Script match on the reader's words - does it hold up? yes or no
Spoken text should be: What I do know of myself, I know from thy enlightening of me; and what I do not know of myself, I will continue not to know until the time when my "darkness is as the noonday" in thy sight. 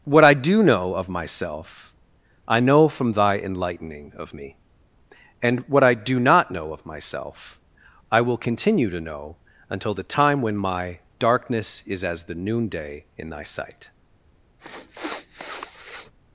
no